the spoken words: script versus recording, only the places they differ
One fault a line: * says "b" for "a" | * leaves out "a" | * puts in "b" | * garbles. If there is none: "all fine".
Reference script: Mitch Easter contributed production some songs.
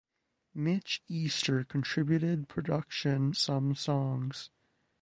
all fine